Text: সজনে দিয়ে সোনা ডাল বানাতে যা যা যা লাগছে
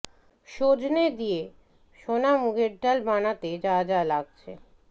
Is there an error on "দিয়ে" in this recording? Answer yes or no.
no